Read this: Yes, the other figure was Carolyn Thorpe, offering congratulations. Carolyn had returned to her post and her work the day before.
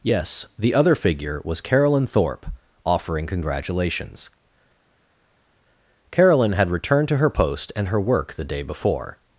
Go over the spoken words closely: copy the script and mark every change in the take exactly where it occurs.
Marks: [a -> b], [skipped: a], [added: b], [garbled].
Yes, the other figure was Carolyn Thorpe, offering congratulations. Carolyn had returned to her post and her work the day before.